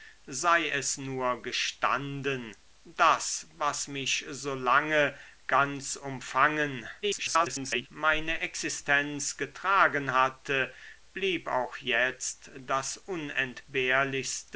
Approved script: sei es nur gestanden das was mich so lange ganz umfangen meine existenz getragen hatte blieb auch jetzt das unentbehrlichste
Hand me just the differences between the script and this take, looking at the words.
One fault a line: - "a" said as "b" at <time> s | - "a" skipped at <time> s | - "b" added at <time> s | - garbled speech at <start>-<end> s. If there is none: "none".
- garbled speech at 7.0-7.9 s